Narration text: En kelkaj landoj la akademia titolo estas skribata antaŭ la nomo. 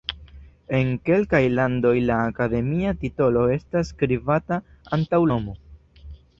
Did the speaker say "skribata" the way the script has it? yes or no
yes